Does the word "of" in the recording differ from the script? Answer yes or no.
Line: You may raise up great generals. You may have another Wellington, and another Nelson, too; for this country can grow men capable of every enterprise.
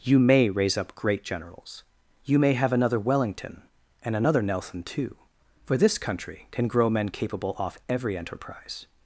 yes